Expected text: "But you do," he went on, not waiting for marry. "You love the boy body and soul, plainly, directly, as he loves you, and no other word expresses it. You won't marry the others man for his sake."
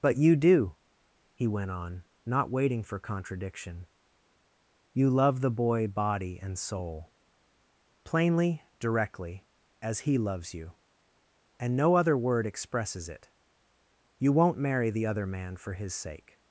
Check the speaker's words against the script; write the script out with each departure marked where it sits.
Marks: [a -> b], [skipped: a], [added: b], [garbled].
"But you do," he went on, not waiting for [marry. -> contradiction] "You love the boy body and soul, plainly, directly, as he loves you, and no other word expresses it. You won't marry the [others -> other] man for his sake."